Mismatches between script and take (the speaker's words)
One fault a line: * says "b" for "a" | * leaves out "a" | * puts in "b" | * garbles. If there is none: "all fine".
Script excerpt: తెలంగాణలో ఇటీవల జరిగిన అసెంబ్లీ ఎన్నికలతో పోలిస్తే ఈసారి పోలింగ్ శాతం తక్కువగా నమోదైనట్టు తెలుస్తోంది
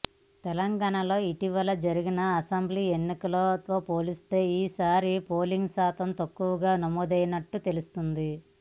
all fine